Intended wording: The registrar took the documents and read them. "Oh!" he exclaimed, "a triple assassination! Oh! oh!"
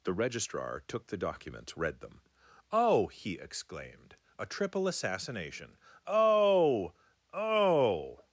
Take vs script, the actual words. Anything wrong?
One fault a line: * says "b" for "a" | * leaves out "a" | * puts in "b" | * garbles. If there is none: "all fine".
* leaves out "and"